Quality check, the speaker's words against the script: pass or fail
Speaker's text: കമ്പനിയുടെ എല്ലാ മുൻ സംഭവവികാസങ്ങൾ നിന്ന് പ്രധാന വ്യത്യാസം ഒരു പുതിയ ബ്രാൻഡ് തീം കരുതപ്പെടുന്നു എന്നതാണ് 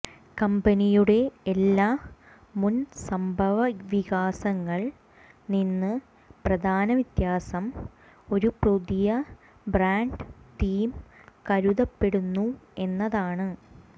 pass